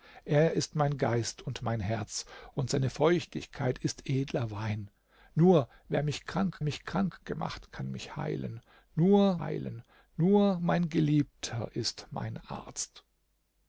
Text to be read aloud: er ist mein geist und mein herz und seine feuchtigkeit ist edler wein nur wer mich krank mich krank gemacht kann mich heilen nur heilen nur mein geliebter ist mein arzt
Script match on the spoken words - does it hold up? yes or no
yes